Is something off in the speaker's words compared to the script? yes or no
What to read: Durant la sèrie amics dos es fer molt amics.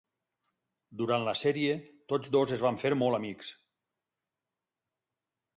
yes